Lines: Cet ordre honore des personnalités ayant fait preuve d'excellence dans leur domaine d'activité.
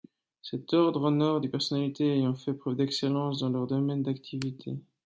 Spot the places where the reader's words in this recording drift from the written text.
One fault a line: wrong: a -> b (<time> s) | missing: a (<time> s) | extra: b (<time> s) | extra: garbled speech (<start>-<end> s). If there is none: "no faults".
no faults